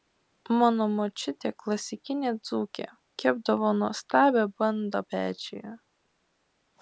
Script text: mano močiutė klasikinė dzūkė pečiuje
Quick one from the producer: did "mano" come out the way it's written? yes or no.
yes